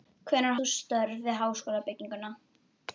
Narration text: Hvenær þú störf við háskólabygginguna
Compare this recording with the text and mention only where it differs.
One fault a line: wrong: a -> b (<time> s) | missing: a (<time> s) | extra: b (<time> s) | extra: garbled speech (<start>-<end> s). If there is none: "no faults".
no faults